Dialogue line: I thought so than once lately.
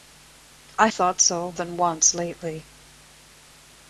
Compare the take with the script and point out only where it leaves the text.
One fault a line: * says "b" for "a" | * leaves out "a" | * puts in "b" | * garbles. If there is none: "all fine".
all fine